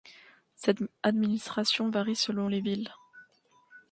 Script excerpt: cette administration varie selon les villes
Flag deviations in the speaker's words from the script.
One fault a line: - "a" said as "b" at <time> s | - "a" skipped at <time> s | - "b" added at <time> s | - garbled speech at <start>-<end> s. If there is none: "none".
none